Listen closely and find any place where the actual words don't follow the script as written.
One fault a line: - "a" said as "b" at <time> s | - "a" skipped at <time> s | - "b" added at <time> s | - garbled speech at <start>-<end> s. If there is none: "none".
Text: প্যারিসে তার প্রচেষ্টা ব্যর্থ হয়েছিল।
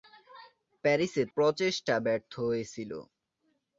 - "তার" skipped at 1.2 s